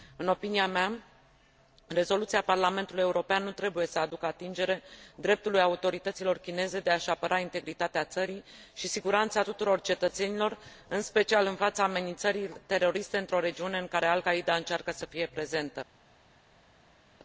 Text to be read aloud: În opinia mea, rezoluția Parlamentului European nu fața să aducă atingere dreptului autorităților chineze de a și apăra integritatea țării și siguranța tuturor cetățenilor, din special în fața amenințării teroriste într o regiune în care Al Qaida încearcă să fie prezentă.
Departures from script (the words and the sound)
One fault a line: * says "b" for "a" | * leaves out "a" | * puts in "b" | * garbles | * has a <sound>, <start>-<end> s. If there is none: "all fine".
* says "trebuie" for "fața"
* says "în" for "din"